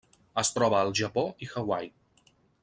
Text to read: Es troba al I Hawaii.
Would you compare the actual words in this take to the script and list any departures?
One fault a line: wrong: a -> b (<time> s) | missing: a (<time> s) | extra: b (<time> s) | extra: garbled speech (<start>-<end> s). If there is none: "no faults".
extra: Japó (1.0 s)